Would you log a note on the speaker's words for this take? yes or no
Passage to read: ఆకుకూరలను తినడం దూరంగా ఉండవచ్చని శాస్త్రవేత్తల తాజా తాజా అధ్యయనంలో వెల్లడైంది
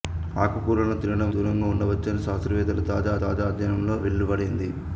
no